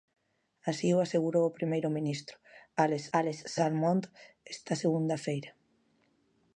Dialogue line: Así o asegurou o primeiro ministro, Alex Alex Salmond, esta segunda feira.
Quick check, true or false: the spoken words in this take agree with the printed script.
true